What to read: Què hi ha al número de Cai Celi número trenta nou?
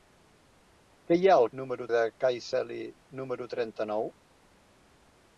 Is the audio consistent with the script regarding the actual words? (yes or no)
yes